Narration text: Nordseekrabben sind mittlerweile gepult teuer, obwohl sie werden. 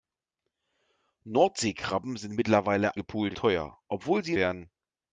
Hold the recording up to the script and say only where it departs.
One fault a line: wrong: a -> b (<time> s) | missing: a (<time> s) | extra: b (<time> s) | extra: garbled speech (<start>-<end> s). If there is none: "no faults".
no faults